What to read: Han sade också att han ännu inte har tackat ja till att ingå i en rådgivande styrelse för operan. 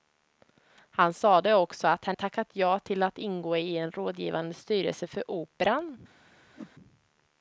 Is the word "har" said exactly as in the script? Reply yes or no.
no